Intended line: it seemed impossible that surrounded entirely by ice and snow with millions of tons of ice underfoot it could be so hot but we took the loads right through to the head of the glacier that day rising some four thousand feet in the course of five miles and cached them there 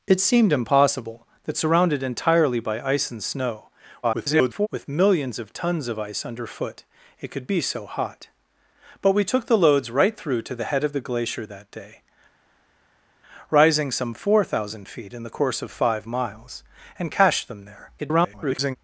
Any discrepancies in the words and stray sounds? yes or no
yes